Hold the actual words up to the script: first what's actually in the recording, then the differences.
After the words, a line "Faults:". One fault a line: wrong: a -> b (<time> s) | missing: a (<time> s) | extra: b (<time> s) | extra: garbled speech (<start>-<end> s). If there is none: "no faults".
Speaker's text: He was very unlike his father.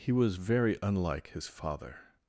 He was very unlike his father.
Faults:
no faults